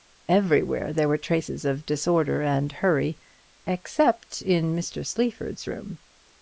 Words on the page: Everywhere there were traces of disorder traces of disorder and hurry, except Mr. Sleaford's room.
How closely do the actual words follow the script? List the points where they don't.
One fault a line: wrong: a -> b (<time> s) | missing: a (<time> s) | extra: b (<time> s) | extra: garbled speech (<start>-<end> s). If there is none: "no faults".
missing: traces of disorder (2.4 s)
extra: in (4.4 s)